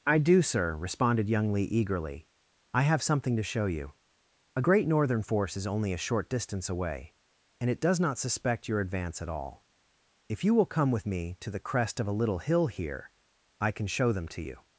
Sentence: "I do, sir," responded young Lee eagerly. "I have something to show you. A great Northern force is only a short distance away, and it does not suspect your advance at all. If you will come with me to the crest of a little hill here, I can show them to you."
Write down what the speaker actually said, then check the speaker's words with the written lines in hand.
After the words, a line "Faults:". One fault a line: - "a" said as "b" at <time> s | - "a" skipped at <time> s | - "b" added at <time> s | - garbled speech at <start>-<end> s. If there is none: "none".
"I do, sir," responded young Lee eagerly. "I have something to show you. A great Northern force is only a short distance away, and it does not suspect your advance at all. If you will come with me to the crest of a little hill here, I can show them to you."
Faults:
none